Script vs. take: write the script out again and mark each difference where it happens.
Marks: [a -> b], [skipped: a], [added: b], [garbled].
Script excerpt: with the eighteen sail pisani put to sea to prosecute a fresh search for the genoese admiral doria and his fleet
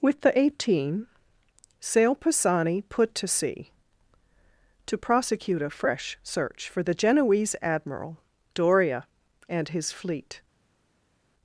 with the eighteen sail pisani put to sea to prosecute a fresh search for the genoese admiral doria and his fleet